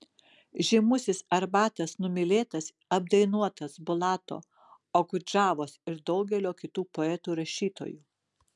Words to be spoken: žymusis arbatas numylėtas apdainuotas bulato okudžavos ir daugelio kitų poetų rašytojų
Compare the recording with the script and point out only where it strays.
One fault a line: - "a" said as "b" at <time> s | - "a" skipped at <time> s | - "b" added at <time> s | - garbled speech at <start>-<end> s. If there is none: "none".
none